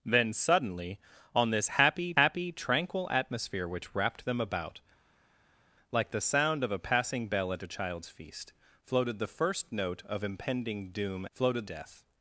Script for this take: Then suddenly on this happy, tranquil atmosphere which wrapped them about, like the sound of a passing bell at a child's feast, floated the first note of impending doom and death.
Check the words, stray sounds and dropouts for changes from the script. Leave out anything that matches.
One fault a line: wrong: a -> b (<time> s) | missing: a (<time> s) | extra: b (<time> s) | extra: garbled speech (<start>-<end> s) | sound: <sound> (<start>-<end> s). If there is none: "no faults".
extra: happy (2.2 s)
wrong: and -> floated (11.3 s)